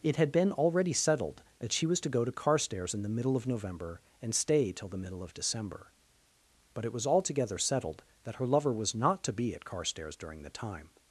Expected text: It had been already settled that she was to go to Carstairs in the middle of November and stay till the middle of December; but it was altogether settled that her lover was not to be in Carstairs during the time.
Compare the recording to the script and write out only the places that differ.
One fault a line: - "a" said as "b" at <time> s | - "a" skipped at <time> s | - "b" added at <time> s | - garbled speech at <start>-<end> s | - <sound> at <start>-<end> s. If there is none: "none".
- "in" said as "at" at 9.5 s